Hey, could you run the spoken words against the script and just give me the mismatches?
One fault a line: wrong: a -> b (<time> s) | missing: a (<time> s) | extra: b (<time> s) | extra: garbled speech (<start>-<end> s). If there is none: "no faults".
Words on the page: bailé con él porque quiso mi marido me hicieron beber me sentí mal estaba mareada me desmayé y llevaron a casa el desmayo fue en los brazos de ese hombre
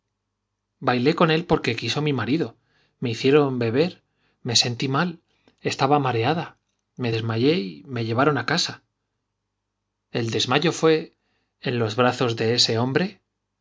extra: me (7.8 s)